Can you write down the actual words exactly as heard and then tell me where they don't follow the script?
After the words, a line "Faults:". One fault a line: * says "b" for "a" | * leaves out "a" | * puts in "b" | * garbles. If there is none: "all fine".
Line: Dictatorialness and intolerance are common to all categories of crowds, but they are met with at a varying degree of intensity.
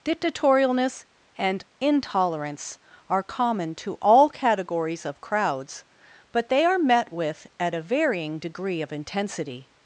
Dictatorialness and intolerance are common to all categories of crowds, but they are met with at a varying degree of intensity.
Faults:
all fine